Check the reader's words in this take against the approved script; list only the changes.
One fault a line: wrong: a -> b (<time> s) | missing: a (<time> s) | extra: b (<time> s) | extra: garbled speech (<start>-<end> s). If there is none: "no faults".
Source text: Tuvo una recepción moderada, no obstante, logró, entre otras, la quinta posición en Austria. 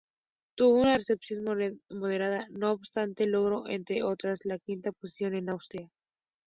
no faults